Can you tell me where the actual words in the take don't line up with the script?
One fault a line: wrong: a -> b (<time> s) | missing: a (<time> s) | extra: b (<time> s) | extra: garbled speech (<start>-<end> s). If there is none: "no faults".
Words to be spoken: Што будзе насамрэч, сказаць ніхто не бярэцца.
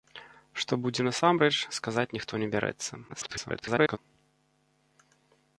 extra: garbled speech (3.1-4.0 s)